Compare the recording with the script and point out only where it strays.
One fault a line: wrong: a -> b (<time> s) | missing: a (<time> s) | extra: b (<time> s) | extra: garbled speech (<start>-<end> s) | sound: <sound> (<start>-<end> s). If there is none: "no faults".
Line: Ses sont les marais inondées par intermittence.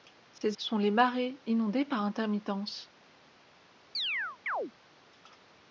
sound: dropout (0.4-0.4 s)
sound: chirp (3.9-4.7 s)